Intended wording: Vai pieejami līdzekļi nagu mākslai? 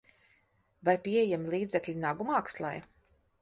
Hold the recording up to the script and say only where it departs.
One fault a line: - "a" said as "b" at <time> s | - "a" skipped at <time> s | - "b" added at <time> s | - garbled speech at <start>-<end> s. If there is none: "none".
none